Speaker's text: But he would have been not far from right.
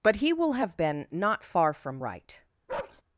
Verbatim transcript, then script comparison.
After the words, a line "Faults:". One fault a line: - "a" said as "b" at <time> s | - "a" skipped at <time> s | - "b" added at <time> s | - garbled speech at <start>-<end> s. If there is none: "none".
But he will have been not far from right.
Faults:
- "would" said as "will" at 0.3 s